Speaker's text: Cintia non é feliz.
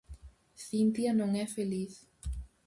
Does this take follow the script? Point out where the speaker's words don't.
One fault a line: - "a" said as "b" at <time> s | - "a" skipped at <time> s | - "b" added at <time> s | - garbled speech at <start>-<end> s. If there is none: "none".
none